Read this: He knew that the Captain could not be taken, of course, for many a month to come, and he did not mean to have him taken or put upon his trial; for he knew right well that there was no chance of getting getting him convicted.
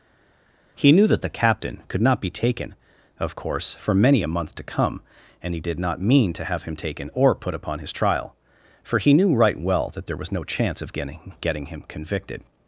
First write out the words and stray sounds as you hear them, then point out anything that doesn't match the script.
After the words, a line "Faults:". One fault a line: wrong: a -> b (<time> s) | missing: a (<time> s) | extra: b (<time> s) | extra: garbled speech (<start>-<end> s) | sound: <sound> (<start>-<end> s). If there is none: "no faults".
He knew that the Captain could not be taken, of course, for many a month to come, and he did not mean to have him taken or put upon his trial; for he knew right well that there was no chance of getting getting him convicted.
Faults:
no faults